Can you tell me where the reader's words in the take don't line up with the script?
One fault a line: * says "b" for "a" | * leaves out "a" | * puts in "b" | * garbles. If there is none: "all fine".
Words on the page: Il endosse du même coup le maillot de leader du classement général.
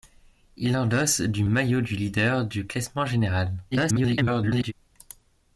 * leaves out "même coup le"
* garbles